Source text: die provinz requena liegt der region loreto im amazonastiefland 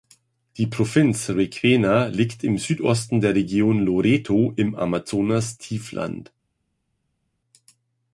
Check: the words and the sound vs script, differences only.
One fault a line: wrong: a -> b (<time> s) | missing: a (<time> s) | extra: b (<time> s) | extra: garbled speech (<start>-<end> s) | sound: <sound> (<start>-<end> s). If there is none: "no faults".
extra: im südosten (2.4 s)